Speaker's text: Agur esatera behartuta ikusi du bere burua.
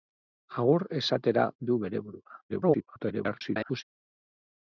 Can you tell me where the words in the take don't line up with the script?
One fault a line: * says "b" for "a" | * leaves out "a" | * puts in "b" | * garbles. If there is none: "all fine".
* leaves out "behartuta ikusi"
* garbles